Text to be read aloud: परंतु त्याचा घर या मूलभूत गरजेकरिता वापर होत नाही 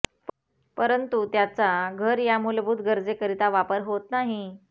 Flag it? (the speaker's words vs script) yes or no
no